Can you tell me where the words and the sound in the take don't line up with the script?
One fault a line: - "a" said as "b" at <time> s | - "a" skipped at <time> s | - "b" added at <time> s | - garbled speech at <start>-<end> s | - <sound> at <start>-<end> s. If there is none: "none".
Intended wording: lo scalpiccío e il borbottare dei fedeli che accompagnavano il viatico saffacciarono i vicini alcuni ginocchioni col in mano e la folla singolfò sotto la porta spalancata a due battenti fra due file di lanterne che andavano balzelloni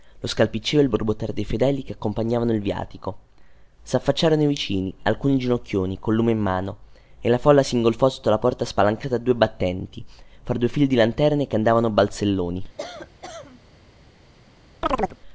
- "lume" added at 6.2 s
- cough at 12.8-13.6 s
- chirp at 14.8-15.2 s